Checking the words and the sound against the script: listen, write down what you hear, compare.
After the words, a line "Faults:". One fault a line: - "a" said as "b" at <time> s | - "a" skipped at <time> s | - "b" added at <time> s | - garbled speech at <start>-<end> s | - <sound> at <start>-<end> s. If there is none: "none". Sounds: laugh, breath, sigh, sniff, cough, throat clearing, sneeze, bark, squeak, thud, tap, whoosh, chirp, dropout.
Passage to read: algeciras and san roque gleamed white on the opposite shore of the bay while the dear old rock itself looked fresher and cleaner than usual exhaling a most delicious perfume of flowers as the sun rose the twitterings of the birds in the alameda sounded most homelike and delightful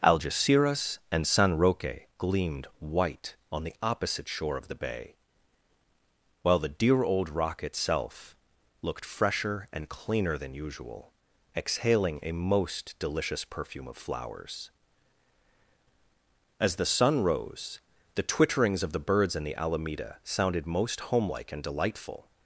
algeciras and san roque gleamed white on the opposite shore of the bay while the dear old rock itself looked fresher and cleaner than usual exhaling a most delicious perfume of flowers as the sun rose the twitterings of the birds in the alameda sounded most homelike and delightful
Faults:
none